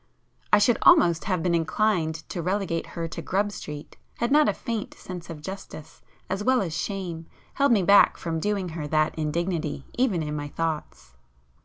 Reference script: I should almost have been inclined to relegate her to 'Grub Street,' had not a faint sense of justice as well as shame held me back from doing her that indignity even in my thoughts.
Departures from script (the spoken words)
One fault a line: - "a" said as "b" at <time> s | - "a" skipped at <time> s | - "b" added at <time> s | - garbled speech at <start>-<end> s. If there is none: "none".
none